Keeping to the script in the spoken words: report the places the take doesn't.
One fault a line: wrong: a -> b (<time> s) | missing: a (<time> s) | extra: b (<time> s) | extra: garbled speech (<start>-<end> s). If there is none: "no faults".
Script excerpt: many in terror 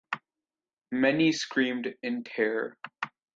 extra: screamed (1.3 s)